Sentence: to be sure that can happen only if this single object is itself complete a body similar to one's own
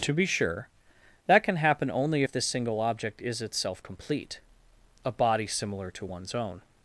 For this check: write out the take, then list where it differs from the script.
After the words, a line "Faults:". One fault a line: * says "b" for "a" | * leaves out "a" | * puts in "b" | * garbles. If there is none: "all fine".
to be sure that can happen only if this single object is itself complete a body similar to one's own
Faults:
all fine